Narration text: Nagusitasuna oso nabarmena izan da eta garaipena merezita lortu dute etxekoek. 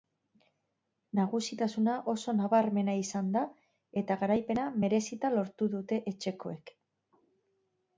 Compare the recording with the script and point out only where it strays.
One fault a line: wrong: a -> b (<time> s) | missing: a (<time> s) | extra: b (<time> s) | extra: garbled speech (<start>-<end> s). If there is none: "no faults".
no faults